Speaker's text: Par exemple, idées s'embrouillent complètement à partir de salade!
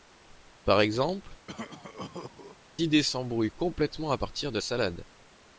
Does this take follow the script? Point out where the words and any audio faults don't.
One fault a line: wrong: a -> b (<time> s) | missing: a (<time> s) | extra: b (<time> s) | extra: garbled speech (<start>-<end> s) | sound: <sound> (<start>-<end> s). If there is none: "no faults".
sound: cough (1.5-2.6 s)